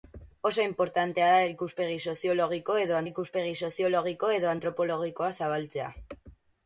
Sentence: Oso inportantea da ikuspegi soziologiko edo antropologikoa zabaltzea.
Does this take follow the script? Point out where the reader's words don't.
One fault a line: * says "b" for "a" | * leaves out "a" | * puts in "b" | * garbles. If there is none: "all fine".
* puts in "ikuspegi soziologiko edo"